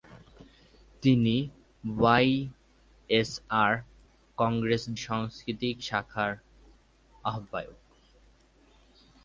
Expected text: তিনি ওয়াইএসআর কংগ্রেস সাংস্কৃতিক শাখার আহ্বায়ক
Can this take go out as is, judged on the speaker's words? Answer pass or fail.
pass